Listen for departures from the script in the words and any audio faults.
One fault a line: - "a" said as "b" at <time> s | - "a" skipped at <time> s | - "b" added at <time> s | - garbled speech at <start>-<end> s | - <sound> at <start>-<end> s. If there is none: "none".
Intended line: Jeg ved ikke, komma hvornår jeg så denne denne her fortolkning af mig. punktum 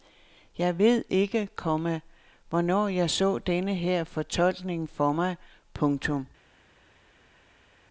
- "denne" skipped at 3.8 s
- "af" said as "for" at 4.9 s